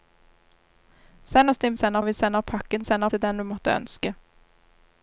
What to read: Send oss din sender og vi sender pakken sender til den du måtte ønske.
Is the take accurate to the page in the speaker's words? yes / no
yes